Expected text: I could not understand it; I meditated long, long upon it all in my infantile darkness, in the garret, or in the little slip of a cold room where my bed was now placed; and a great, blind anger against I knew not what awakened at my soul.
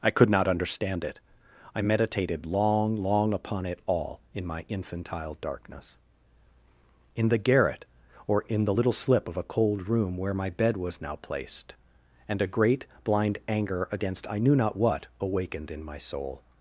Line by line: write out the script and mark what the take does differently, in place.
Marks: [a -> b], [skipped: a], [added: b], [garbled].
I could not understand it; I meditated long, long upon it all in my infantile darkness, in the garret, or in the little slip of a cold room where my bed was now placed; and a great, blind anger against I knew not what awakened [at -> in] my soul.